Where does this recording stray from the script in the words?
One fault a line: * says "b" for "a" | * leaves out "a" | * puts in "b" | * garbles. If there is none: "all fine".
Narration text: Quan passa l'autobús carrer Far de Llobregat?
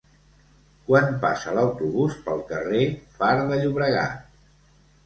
* puts in "pel"